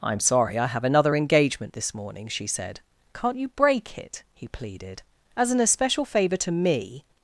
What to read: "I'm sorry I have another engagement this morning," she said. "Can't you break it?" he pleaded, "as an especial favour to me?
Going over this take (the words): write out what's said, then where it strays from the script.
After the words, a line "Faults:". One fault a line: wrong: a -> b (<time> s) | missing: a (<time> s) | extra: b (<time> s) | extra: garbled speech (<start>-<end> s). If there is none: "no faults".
"I'm sorry I have another engagement this morning," she said. "Can't you break it?" he pleaded, "as an especial favour to me?
Faults:
no faults